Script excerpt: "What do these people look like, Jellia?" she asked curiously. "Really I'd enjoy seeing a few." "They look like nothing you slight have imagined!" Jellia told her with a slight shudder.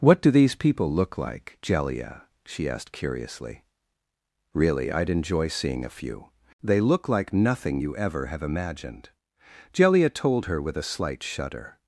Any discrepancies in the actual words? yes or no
yes